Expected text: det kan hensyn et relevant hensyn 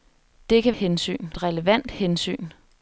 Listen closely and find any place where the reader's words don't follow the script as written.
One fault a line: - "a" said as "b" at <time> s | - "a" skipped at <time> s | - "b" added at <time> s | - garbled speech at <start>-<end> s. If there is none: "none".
none